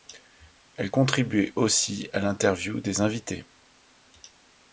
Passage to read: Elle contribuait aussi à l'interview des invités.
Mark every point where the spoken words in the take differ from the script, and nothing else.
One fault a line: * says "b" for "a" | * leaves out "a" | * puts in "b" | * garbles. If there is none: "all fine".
all fine